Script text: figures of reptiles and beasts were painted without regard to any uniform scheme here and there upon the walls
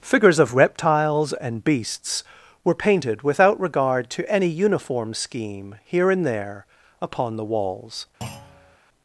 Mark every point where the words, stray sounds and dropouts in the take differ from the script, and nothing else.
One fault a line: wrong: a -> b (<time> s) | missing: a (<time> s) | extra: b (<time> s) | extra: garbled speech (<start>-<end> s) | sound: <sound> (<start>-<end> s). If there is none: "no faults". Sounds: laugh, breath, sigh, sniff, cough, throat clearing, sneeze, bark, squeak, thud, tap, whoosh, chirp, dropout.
sound: thud (8.2-8.8 s)